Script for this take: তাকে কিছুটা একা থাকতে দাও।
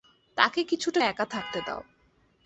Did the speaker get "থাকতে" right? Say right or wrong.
right